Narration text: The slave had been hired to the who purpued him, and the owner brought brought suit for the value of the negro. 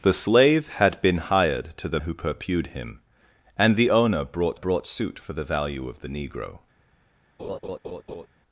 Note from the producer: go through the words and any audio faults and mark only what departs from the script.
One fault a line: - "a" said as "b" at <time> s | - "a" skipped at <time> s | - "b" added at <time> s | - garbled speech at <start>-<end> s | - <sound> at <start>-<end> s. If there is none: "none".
- laugh at 7.4-8.3 s